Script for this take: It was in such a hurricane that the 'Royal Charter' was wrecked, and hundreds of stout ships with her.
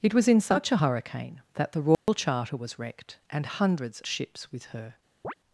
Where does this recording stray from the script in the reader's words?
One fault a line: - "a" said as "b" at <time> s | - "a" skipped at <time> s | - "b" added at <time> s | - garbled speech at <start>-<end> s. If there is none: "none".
- "of stout" skipped at 4.0 s